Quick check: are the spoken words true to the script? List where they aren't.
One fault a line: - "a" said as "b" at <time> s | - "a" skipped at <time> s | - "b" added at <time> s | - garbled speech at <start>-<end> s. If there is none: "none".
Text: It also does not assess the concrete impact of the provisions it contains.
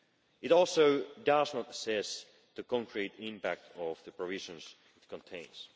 none